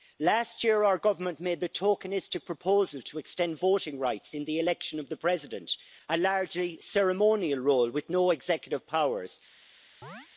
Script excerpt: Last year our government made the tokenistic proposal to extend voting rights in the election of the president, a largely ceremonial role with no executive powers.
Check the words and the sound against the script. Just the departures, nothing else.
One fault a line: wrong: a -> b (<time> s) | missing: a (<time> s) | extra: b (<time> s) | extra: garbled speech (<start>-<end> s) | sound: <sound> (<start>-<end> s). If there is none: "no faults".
sound: chirp (10.0-10.3 s)